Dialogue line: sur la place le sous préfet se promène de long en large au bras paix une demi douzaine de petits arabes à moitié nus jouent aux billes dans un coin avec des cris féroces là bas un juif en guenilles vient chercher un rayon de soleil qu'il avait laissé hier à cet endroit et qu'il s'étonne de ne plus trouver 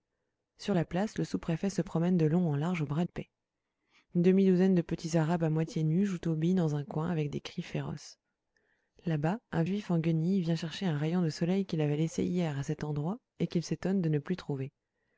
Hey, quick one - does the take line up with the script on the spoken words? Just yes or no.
yes